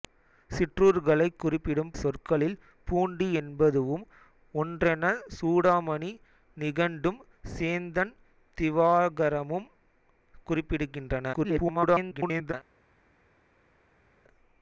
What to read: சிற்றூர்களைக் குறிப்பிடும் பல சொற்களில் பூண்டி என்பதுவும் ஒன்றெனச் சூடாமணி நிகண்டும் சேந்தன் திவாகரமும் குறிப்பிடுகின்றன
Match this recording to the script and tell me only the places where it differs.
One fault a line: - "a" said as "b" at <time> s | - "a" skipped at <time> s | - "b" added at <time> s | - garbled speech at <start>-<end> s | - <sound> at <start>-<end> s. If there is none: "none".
- "பல" skipped at 1.9 s
- garbled speech at 11.3-12.5 s